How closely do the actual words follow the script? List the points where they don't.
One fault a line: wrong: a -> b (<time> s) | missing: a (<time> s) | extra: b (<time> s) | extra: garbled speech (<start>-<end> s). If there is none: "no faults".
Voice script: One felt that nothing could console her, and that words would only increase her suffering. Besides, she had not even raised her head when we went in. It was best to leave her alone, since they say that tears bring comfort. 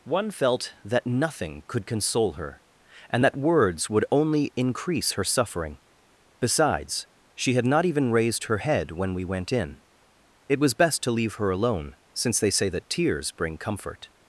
no faults